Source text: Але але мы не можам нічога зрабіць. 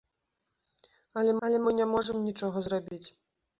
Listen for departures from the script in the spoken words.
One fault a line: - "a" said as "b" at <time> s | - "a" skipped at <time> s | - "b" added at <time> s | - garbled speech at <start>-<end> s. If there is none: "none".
none